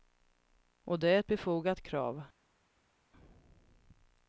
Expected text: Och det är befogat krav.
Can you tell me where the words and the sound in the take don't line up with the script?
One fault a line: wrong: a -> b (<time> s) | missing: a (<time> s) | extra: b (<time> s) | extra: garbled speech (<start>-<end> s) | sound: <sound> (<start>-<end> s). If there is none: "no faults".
extra: ett (1.2 s)